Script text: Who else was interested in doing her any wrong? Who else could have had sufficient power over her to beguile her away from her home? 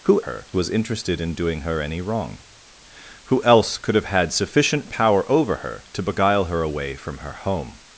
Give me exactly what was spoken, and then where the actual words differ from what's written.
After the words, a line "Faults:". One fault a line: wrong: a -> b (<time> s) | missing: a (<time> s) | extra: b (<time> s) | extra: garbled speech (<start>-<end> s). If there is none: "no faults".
Who her was interested in doing her any wrong? Who else could have had sufficient power over her to beguile her away from her home?
Faults:
wrong: else -> her (0.2 s)